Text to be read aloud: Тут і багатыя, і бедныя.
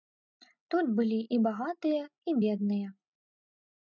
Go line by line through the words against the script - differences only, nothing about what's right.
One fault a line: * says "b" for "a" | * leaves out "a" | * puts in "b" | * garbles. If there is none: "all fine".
* puts in "былі"